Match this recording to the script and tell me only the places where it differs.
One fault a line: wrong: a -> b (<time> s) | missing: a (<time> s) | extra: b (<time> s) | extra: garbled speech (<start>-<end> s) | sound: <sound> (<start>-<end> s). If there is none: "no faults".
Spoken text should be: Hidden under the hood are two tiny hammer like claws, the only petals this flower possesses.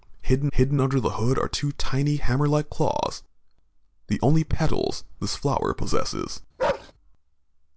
extra: hidden (0.5 s)
sound: bark (6.6-6.9 s)